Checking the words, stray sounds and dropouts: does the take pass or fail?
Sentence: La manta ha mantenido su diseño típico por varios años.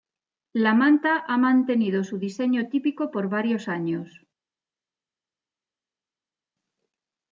pass